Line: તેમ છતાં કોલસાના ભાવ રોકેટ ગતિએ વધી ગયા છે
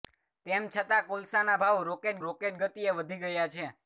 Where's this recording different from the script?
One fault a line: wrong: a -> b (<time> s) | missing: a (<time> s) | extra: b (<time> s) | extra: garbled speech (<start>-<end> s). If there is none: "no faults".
extra: રોકેટ (2.2 s)